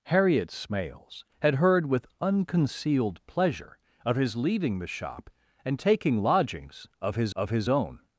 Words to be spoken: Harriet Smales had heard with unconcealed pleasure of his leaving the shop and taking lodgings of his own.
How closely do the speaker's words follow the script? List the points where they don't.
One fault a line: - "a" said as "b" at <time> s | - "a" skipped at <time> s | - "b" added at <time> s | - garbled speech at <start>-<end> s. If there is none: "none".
- "of his" added at 7.4 s